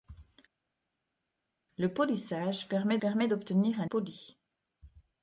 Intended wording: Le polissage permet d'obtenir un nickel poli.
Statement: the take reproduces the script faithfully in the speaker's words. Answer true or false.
false